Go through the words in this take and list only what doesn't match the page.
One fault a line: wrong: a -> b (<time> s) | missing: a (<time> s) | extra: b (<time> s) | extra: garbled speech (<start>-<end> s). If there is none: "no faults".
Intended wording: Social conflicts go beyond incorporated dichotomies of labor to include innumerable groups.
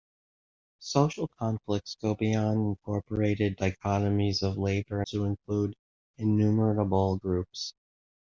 no faults